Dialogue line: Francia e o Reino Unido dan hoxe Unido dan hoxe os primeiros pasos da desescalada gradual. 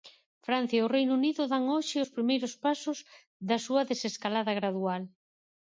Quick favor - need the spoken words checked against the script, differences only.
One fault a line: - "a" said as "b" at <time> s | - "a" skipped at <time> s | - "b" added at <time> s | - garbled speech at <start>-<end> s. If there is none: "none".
- "Unido dan hoxe" skipped at 2.0 s
- "súa" added at 3.7 s